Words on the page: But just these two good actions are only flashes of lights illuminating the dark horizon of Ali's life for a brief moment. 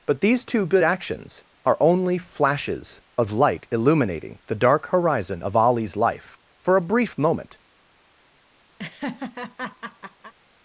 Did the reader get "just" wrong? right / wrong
wrong